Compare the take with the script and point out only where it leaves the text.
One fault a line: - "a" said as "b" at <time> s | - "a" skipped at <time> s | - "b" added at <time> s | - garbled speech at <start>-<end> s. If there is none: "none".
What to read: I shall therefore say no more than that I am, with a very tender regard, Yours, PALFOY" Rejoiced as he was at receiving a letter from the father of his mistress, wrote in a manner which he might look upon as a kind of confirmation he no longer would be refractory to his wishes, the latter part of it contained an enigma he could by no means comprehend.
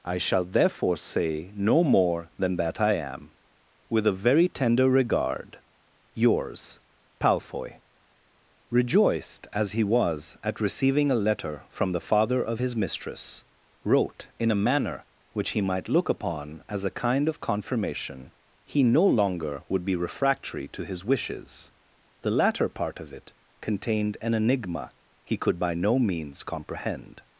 none